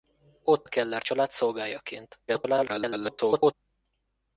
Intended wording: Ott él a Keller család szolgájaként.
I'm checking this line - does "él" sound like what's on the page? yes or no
no